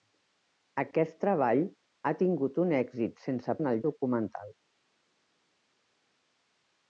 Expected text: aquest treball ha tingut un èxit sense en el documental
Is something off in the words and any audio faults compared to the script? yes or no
no